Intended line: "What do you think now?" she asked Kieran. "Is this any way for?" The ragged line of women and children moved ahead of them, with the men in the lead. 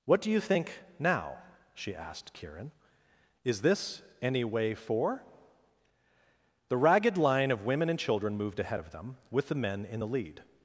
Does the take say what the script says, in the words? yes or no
yes